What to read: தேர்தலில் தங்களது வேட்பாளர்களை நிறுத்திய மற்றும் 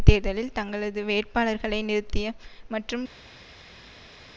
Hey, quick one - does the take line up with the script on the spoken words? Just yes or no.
yes